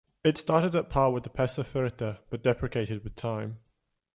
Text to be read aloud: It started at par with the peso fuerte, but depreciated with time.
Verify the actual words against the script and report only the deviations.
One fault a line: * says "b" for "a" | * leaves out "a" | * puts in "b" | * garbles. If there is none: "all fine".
all fine